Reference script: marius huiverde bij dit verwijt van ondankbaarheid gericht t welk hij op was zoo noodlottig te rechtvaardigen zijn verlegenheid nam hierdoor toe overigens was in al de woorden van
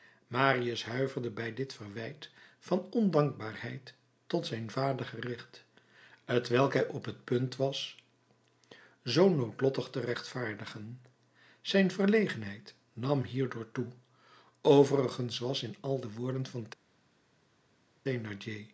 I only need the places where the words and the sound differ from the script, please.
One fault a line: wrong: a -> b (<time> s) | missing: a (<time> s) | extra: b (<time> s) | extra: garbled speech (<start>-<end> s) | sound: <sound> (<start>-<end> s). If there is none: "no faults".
extra: tot zijn vader (4.3 s)
extra: t punt (7.0 s)